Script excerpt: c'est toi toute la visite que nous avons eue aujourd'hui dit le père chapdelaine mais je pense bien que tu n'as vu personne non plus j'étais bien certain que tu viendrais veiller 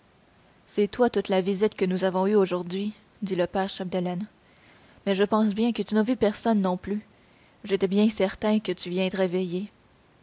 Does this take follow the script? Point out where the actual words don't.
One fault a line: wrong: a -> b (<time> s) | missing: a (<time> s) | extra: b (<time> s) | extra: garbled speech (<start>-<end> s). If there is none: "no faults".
no faults